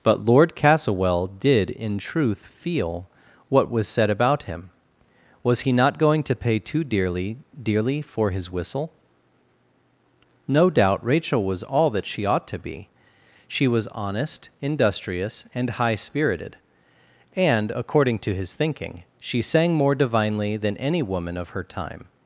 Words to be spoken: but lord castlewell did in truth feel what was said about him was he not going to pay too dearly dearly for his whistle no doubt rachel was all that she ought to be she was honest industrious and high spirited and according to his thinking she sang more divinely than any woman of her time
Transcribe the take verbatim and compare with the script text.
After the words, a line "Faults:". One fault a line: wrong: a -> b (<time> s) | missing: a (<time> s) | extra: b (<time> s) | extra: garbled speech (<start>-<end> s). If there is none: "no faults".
but lord castlewell did in truth feel what was said about him was he not going to pay too dearly dearly for his whistle no doubt rachel was all that she ought to be she was honest industrious and high spirited and according to his thinking she sang more divinely than any woman of her time
Faults:
no faults